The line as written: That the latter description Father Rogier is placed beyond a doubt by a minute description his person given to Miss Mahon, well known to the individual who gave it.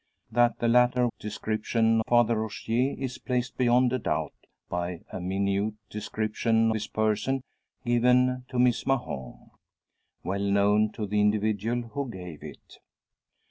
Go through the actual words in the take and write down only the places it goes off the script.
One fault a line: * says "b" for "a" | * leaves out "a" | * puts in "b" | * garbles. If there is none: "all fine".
all fine